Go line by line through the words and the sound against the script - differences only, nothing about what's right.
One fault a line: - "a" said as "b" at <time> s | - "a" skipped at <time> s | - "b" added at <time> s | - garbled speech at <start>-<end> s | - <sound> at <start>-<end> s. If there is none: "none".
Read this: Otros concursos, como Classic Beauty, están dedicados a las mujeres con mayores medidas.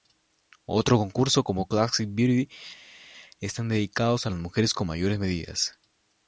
none